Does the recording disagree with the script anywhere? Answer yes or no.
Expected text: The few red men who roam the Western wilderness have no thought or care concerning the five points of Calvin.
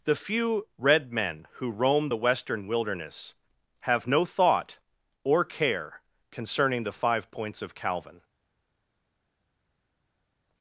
no